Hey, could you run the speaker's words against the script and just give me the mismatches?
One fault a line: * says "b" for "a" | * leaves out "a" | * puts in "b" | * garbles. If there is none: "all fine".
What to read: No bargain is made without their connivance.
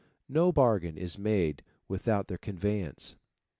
all fine